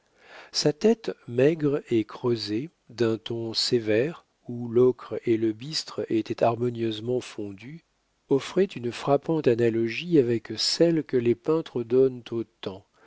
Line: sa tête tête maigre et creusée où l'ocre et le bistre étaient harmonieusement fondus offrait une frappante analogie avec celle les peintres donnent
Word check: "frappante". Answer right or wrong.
right